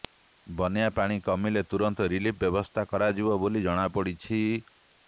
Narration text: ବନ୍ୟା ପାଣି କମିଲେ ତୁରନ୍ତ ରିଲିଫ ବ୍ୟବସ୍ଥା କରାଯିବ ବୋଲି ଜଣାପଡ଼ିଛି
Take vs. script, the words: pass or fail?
pass